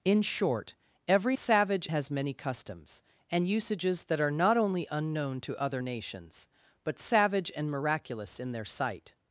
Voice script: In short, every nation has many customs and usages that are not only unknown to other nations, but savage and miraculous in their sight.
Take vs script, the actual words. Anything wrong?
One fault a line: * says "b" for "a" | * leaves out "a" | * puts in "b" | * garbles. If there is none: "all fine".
* says "savage" for "nation"